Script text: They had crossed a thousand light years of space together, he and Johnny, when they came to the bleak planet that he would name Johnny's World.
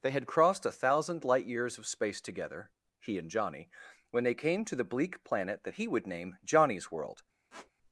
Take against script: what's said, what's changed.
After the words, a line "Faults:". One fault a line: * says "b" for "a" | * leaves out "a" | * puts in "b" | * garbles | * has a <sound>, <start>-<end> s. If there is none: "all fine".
They had crossed a thousand light years of space together, he and Johnny, when they came to the bleak planet that he would name Johnny's World.
Faults:
* has a squeak, 7.5-7.7 s